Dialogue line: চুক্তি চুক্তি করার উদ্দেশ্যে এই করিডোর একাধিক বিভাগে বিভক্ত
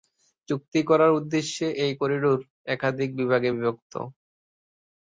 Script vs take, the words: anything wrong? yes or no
yes